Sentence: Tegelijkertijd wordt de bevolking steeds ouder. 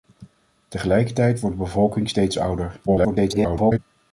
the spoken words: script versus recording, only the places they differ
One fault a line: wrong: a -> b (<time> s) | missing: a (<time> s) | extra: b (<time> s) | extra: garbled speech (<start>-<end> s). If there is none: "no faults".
extra: garbled speech (2.9-3.8 s)